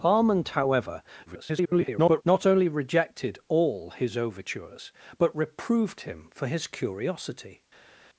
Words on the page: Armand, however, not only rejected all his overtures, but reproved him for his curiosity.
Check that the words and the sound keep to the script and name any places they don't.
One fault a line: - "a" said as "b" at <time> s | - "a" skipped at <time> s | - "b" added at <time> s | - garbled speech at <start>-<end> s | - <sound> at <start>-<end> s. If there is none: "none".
- garbled speech at 1.3-2.2 s